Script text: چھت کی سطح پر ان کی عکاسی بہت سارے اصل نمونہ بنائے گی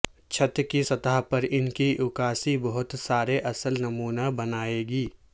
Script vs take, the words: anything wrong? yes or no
no